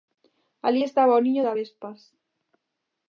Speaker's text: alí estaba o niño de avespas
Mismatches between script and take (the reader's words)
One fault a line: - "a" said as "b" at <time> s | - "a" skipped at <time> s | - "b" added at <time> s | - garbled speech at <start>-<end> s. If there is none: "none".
none